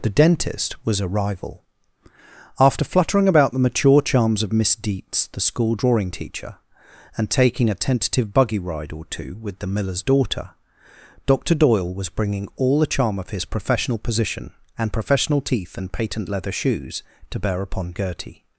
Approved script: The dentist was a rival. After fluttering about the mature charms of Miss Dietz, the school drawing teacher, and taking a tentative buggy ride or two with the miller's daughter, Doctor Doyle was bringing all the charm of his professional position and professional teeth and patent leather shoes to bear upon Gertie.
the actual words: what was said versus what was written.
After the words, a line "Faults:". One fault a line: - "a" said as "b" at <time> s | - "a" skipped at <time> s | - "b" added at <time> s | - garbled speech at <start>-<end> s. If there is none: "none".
The dentist was a rival. After fluttering about the mature charms of Miss Dietz, the school drawing teacher, and taking a tentative buggy ride or two with the miller's daughter, Doctor Doyle was bringing all the charm of his professional position and professional teeth and patent leather shoes to bear upon Gertie.
Faults:
none